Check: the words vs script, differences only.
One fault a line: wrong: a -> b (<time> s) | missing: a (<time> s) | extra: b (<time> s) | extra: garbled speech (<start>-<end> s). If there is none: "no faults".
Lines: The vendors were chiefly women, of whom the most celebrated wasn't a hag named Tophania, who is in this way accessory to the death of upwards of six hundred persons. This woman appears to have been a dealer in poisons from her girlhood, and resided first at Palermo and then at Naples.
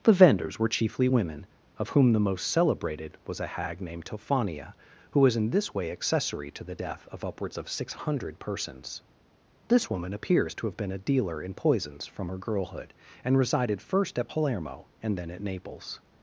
wrong: wasn't -> was (3.3 s)
wrong: is -> was (5.2 s)